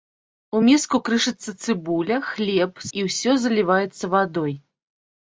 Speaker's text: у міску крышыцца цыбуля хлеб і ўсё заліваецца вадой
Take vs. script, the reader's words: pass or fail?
pass